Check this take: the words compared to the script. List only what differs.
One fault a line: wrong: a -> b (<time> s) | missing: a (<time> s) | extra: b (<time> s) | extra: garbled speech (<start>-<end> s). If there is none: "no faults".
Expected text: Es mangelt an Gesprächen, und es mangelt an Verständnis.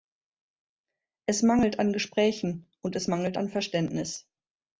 no faults